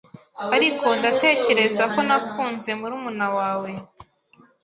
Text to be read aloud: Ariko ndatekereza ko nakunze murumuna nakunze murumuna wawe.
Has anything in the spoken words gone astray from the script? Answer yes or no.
yes